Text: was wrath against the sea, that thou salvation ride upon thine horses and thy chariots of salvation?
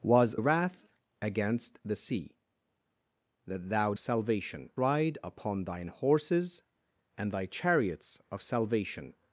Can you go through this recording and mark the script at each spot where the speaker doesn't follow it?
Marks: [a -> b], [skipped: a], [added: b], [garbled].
was wrath against the sea, that thou salvation ride upon thine horses and thy chariots of salvation?